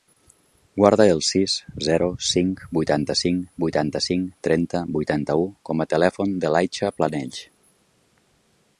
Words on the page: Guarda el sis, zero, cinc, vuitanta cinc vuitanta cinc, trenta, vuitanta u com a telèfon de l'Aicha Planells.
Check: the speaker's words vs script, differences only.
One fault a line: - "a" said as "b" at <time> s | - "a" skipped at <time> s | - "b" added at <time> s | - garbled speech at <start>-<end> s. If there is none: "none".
none